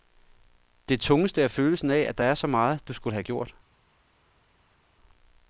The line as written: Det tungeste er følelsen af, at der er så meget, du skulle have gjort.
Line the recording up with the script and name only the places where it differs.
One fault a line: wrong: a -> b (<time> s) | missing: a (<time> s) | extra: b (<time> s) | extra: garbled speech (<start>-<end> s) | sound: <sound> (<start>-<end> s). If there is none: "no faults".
no faults